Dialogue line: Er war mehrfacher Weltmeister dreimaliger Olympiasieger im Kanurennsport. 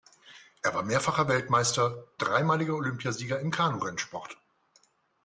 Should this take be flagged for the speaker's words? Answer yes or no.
no